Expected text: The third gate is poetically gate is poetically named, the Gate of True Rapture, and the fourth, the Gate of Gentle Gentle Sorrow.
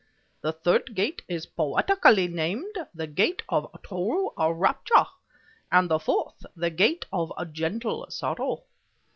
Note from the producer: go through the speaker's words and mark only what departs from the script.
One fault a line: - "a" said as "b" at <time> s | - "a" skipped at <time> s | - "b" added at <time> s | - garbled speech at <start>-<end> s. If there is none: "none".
- "gate is poetically" skipped at 2.3 s
- "Gentle" skipped at 8.1 s